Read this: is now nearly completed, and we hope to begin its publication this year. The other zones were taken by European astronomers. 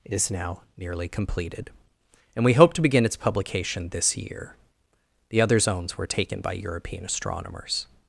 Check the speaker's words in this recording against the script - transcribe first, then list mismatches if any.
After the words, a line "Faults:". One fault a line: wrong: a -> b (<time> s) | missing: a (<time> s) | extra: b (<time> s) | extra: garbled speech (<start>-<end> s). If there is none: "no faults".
is now nearly completed, and we hope to begin its publication this year. The other zones were taken by European astronomers.
Faults:
no faults